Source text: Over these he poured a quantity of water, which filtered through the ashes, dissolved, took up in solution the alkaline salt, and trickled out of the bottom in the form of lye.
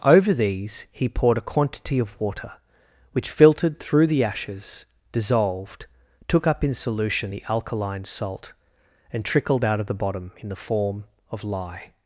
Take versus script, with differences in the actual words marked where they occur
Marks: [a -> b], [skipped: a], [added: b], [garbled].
Over these he poured a quantity of water, which filtered through the ashes, dissolved, took up in solution the alkaline salt, and trickled out of the bottom in the form of lye.